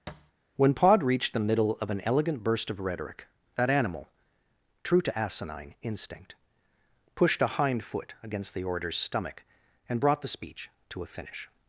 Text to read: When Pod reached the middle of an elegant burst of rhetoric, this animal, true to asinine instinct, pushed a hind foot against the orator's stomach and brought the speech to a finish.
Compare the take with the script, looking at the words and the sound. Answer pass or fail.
fail